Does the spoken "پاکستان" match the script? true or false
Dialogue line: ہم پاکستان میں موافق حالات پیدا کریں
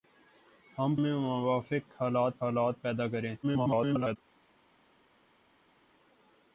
false